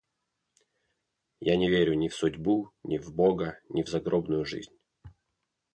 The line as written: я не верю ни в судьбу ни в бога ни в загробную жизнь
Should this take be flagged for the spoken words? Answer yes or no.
no